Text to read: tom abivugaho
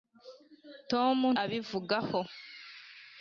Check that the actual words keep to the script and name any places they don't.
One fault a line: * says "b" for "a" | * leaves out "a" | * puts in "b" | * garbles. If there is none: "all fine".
all fine